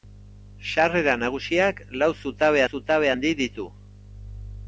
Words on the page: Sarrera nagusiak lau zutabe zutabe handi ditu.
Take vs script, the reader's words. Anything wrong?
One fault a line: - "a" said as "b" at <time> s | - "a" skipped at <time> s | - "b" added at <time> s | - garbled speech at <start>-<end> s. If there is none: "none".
none